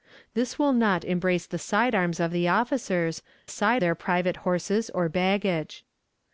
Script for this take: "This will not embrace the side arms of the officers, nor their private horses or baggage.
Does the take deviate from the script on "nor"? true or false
true